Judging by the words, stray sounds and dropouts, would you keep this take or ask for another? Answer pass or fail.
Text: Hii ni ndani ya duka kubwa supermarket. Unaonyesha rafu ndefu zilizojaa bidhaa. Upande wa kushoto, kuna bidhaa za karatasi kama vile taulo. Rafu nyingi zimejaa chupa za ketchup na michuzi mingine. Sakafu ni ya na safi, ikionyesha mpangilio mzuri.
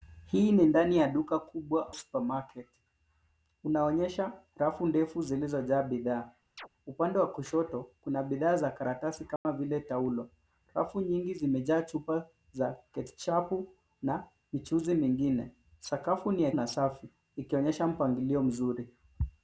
fail